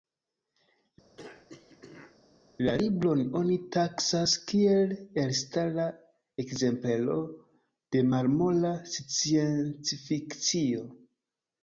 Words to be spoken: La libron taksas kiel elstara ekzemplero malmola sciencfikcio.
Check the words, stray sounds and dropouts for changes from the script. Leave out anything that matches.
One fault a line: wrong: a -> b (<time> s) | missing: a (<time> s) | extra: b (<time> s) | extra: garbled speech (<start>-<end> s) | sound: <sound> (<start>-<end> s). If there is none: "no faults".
sound: throat clearing (1.2-2.2 s)
extra: oni (3.4 s)
extra: de (8.0 s)